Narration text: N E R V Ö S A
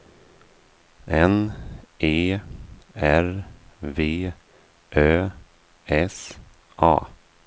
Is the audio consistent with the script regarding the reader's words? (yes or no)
yes